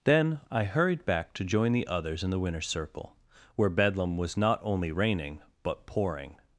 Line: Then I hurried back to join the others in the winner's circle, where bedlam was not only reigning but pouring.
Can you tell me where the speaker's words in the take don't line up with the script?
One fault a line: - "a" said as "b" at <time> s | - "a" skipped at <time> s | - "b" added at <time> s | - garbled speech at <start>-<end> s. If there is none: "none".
none